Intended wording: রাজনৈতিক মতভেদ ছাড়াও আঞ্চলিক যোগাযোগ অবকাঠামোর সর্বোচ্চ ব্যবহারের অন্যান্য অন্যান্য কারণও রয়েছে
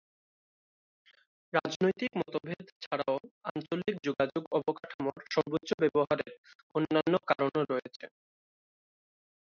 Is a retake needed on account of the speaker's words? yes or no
yes